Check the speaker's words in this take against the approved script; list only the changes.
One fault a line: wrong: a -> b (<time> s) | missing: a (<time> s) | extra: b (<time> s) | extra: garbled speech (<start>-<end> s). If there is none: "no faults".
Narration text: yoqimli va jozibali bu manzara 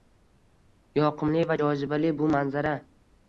no faults